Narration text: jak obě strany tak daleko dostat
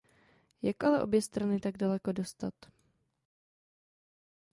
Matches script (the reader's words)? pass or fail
fail